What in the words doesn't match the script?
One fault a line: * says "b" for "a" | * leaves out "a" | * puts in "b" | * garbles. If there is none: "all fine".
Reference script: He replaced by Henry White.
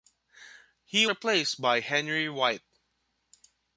all fine